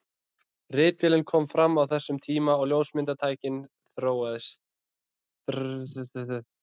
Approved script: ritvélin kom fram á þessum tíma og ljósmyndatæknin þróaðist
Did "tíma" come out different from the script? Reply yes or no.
no